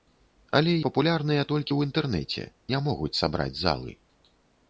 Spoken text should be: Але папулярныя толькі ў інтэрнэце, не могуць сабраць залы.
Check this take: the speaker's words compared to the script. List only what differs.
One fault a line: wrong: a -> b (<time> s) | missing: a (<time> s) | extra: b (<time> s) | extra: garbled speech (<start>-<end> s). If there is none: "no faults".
no faults